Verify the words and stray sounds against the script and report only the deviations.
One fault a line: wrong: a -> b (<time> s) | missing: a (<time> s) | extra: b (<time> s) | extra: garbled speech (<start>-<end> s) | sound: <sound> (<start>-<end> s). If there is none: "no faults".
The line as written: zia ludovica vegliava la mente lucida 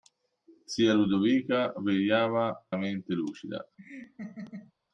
sound: laugh (3.8-4.7 s)